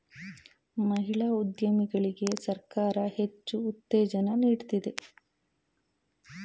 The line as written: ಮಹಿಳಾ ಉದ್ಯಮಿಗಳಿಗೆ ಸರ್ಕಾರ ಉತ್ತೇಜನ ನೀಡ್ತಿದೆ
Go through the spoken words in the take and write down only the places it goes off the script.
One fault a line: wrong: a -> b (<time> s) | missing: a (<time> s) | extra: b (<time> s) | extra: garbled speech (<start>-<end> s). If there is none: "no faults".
extra: ಹೆಚ್ಚು (3.2 s)